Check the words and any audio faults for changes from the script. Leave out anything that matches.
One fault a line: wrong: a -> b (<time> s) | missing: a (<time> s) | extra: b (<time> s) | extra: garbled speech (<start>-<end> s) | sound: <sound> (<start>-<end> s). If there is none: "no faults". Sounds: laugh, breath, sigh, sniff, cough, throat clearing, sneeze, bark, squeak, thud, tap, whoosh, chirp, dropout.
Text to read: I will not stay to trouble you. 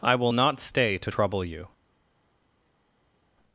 no faults